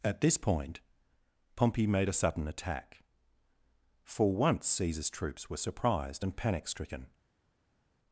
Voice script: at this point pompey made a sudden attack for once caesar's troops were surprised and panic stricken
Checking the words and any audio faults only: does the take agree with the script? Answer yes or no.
yes